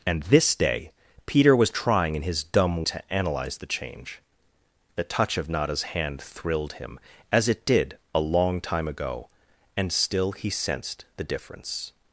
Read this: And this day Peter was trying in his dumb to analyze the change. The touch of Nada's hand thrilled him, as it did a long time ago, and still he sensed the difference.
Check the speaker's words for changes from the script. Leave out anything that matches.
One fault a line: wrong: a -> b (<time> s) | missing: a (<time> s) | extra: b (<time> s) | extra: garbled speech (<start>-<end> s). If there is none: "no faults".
no faults